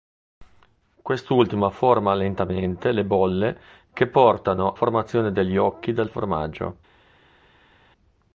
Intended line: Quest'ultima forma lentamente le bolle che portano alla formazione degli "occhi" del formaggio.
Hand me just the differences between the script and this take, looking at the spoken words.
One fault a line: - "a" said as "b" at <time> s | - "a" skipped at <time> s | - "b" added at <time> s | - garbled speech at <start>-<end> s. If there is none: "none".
- "alla" skipped at 4.7 s